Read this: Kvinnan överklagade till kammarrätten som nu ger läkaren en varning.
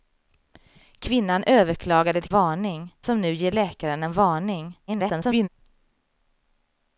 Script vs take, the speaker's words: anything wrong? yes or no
yes